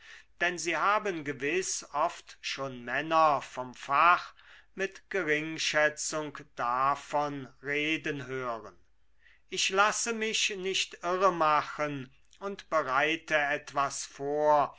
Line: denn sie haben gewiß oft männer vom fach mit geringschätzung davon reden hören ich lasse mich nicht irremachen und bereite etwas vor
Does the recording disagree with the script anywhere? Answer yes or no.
yes